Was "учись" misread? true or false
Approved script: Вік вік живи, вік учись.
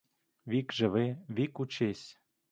false